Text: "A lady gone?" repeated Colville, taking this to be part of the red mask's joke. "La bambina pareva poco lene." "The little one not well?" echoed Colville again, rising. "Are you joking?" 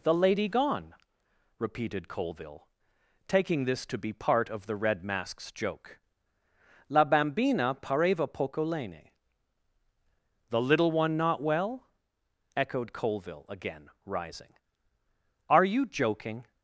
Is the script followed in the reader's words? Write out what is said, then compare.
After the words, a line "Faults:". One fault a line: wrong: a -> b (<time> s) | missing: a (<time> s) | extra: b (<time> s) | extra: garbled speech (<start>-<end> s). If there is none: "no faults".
"The lady gone?" repeated Colville, taking this to be part of the red mask's joke. "La bambina pareva poco lene." "The little one not well?" echoed Colville again, rising. "Are you joking?"
Faults:
wrong: A -> The (0.0 s)